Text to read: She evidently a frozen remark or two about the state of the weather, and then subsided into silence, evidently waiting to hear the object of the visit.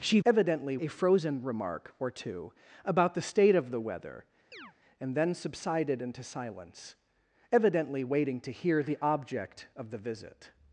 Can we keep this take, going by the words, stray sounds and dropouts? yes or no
no